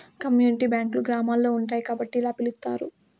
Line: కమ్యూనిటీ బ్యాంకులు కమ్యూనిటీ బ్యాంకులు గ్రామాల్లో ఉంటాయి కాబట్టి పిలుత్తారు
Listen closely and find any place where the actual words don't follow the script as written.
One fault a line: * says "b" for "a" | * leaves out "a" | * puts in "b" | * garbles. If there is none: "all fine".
* leaves out "కమ్యూనిటీ బ్యాంకులు"
* puts in "ఇలా"